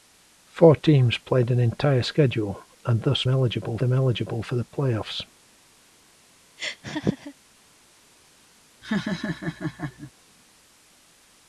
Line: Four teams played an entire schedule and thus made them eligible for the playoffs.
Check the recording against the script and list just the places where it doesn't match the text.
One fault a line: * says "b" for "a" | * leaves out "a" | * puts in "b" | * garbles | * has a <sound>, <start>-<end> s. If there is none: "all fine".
* says "eligible" for "made"
* has a laugh, 6.6-7.3 s
* has a laugh, 8.8-10.1 s